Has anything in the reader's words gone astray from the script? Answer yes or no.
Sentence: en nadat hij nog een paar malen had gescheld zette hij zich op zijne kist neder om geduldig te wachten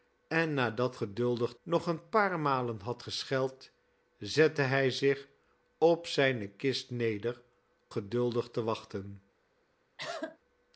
yes